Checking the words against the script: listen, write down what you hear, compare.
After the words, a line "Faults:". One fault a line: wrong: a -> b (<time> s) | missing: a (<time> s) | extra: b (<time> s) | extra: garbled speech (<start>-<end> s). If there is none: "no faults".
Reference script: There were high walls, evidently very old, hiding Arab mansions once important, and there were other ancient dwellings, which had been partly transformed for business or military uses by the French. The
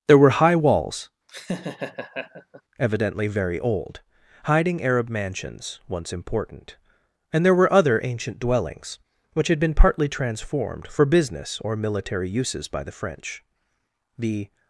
There were high walls, evidently very old, hiding Arab mansions once important, and there were other ancient dwellings, which had been partly transformed for business or military uses by the French. The
Faults:
no faults